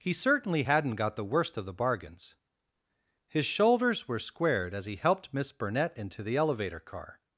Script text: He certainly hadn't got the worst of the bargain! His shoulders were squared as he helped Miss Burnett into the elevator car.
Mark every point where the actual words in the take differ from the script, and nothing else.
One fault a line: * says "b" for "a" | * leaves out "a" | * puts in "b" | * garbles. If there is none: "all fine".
* says "bargains" for "bargain"